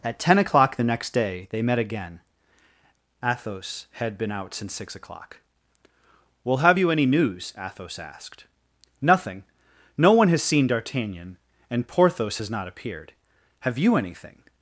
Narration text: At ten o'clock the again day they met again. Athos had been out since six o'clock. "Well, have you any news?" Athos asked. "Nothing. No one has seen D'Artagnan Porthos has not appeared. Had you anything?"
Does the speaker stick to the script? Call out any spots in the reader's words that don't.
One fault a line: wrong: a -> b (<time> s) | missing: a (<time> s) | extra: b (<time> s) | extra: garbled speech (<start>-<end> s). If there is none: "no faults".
wrong: again -> next (0.8 s)
extra: and (11.7 s)
wrong: Had -> Have (13.6 s)